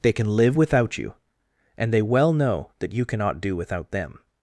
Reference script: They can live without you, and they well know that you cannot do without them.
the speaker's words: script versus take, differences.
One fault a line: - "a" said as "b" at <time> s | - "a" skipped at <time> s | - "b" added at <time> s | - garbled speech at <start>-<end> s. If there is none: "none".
none